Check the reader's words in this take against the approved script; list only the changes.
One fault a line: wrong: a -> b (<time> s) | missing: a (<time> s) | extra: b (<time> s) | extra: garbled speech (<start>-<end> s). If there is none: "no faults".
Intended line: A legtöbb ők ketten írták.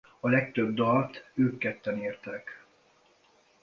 extra: dalt (0.7 s)